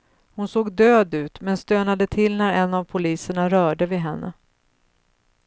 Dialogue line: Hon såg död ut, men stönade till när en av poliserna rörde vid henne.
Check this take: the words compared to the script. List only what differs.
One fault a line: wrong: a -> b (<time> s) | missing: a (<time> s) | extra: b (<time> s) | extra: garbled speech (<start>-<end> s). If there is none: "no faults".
no faults